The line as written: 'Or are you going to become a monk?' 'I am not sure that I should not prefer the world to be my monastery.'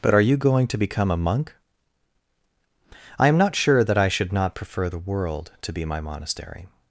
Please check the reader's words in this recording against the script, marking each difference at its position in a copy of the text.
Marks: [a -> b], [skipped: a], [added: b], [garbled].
['Or -> But] are you going to become a monk?' 'I am not sure that I should not prefer the world to be my monastery.'